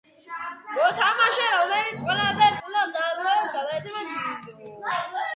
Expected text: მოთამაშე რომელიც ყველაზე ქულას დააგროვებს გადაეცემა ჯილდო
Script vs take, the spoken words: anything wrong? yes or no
no